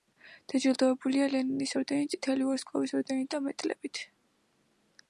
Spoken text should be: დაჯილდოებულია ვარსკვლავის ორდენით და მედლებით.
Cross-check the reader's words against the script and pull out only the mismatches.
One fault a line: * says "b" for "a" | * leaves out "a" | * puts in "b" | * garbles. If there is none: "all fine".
* puts in "ლენინის ორდენით წითელი"